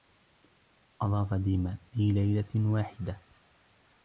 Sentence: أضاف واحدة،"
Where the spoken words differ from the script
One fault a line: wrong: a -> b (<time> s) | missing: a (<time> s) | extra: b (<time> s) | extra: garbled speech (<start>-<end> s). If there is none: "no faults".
extra: ديما في ليلة (1.3 s)